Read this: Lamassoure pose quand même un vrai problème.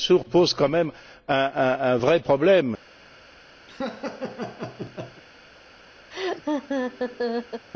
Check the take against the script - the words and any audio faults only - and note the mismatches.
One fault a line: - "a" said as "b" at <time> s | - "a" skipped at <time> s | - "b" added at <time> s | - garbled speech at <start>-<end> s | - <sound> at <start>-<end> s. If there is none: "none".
- laugh at 3.7-5.2 s
- laugh at 6.1-7.7 s